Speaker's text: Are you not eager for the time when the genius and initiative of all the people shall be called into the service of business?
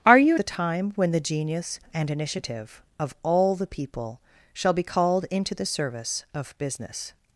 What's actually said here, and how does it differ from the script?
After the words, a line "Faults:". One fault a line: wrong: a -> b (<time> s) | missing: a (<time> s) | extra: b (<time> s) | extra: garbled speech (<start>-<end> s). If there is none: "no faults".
Are you the time when the genius and initiative of all the people shall be called into the service of business?
Faults:
missing: not eager for (0.4 s)